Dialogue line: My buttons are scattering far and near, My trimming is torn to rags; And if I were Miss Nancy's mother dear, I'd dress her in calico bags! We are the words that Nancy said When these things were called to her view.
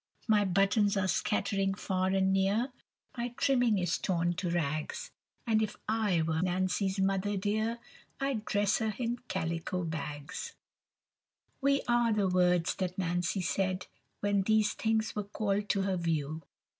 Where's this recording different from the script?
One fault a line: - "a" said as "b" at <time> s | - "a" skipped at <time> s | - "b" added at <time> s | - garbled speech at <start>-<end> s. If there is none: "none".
- "Miss" skipped at 6.4 s